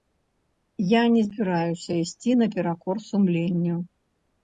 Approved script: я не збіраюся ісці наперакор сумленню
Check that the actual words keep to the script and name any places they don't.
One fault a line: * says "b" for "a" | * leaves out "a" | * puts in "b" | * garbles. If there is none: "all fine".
all fine